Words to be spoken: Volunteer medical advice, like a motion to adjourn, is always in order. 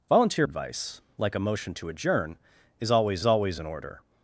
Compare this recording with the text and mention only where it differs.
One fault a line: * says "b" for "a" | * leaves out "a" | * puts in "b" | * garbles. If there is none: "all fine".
* leaves out "medical"
* puts in "always"